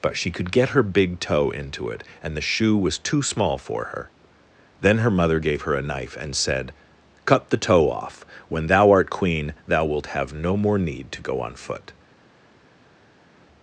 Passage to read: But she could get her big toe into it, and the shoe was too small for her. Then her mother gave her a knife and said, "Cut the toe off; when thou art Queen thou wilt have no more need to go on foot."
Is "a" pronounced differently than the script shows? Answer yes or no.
no